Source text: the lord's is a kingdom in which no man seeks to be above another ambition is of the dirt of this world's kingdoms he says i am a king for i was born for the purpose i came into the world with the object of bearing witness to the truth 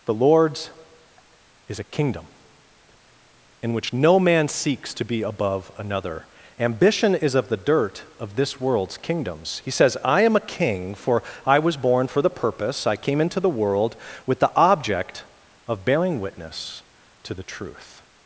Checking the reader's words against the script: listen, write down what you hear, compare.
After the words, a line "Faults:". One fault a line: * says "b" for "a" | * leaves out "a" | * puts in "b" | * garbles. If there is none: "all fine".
the lord's is a kingdom in which no man seeks to be above another ambition is of the dirt of this world's kingdoms he says i am a king for i was born for the purpose i came into the world with the object of bearing witness to the truth
Faults:
all fine